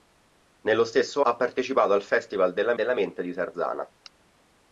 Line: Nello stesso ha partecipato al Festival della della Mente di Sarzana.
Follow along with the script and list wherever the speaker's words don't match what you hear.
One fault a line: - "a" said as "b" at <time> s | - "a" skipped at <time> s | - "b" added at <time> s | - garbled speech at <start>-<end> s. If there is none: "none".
none